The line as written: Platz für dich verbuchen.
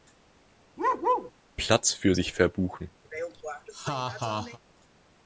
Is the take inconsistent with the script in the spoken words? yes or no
yes